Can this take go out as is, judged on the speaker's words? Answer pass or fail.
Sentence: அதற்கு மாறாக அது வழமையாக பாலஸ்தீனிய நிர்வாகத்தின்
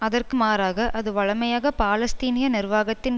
pass